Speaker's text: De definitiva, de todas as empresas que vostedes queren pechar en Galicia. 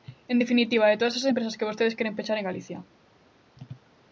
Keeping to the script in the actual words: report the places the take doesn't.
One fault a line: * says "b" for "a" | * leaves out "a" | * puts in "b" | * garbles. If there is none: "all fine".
* says "En" for "De"